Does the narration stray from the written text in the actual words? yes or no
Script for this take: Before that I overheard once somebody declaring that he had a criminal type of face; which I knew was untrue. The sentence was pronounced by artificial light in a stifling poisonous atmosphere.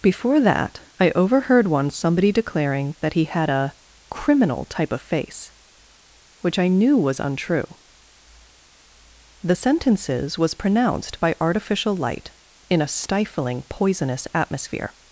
yes